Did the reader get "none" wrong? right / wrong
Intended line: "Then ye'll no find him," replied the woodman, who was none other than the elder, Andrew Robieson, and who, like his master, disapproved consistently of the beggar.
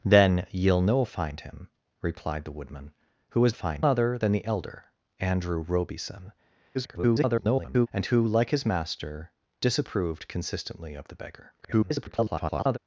wrong